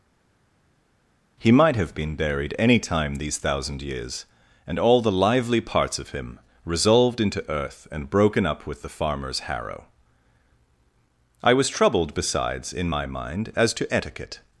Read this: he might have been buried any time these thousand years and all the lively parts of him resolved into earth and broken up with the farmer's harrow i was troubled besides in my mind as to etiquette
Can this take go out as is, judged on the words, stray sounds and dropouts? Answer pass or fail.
pass